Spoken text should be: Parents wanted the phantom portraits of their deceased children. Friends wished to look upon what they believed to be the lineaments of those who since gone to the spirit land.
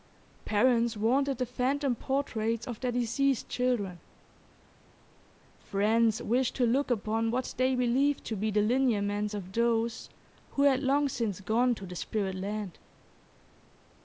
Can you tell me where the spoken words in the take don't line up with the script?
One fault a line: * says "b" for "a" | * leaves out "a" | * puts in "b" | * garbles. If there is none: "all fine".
* puts in "had long"